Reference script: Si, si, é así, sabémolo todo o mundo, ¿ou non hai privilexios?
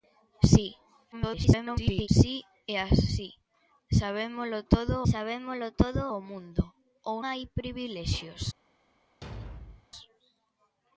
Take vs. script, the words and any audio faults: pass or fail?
fail